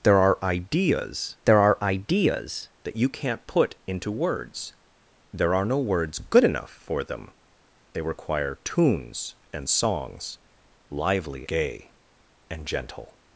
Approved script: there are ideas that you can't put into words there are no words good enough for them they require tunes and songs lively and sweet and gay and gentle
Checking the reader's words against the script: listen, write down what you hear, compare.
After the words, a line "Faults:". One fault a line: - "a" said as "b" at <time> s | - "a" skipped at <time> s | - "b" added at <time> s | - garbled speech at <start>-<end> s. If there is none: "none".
there are ideas there are ideas that you can't put into words there are no words good enough for them they require tunes and songs lively gay and gentle
Faults:
- "there are ideas" added at 1.4 s
- "and sweet and" skipped at 11.5 s